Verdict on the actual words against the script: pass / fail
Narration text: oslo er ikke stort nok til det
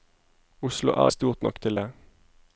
fail